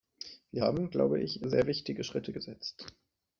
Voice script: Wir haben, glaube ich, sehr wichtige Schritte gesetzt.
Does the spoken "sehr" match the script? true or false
true